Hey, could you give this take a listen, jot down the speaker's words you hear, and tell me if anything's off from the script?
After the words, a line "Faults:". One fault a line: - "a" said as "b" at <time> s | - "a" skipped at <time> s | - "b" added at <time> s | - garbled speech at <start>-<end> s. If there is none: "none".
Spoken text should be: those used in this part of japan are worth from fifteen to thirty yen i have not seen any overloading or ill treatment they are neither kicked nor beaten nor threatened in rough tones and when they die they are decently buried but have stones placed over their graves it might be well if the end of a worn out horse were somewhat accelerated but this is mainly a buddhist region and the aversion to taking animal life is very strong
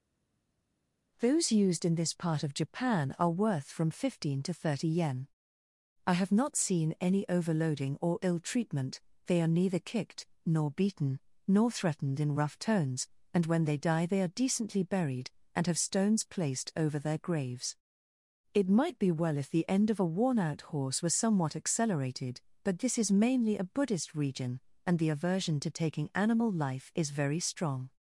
those used in this part of japan are worth from fifteen to thirty yen i have not seen any overloading or ill treatment they are neither kicked nor beaten nor threatened in rough tones and when they die they are decently buried and have stones placed over their graves it might be well if the end of a worn out horse were somewhat accelerated but this is mainly a buddhist region and the aversion to taking animal life is very strong
Faults:
- "but" said as "and" at 15.5 s